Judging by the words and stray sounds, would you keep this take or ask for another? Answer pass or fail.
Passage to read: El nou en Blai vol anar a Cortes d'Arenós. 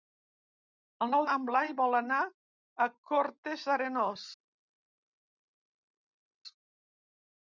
pass